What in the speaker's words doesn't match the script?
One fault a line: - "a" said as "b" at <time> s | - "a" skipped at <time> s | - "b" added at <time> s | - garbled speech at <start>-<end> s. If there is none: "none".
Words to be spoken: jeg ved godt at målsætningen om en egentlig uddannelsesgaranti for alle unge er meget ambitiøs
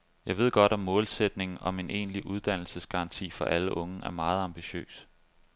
none